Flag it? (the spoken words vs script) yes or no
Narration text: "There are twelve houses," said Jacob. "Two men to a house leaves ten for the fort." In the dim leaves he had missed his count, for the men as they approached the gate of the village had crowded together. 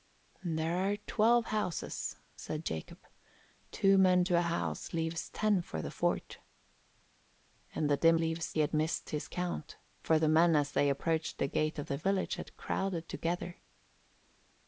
no